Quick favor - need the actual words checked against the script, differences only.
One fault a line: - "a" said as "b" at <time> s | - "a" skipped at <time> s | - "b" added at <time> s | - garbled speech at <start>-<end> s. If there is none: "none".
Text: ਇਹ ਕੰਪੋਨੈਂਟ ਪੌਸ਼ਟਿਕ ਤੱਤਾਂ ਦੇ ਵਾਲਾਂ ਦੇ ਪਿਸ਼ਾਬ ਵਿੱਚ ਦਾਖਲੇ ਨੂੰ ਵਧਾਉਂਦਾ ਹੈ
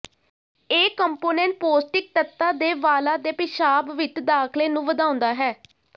none